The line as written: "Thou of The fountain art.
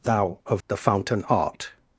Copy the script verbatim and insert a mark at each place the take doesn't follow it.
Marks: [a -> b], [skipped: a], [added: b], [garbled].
"Thou of The fountain art.